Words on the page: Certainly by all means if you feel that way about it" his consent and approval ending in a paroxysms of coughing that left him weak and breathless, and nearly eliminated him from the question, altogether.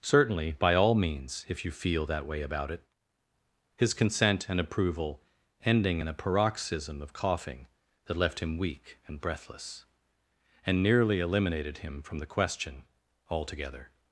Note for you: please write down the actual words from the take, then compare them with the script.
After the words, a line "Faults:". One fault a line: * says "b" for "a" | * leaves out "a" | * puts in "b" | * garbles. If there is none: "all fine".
Certainly by all means if you feel that way about it" his consent and approval ending in a paroxysm of coughing that left him weak and breathless, and nearly eliminated him from the question, altogether.
Faults:
* says "paroxysm" for "paroxysms"